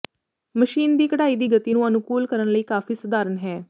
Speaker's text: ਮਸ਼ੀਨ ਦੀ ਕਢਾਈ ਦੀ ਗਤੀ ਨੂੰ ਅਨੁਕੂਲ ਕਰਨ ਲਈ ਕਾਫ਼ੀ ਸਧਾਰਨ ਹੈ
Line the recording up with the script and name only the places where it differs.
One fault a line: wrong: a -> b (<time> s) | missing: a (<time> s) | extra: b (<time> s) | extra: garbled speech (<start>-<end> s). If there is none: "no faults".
no faults